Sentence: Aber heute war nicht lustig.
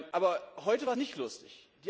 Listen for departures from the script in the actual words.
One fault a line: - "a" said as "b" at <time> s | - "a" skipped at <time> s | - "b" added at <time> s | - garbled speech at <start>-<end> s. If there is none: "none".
none